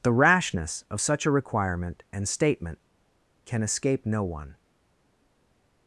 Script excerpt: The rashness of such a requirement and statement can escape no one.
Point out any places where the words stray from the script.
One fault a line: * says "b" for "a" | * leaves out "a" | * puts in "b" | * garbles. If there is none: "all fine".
all fine